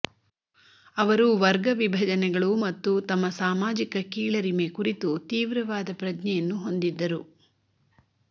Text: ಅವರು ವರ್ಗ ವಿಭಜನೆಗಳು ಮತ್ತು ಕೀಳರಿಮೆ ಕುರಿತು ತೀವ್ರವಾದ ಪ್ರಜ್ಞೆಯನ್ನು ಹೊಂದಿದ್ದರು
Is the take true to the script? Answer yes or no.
no